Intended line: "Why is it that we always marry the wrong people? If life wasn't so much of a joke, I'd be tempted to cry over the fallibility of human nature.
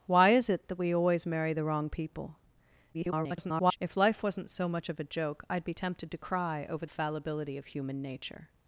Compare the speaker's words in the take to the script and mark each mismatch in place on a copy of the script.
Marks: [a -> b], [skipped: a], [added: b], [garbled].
"Why is it that we always marry the wrong people? [garbled] If life wasn't so much of a joke, I'd be tempted to cry over [skipped: the] fallibility of human nature.